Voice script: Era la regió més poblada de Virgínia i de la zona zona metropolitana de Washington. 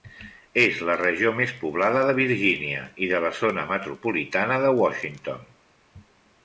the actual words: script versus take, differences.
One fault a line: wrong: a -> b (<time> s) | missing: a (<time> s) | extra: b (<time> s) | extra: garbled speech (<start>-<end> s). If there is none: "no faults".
wrong: Era -> És (0.6 s)
missing: zona (3.7 s)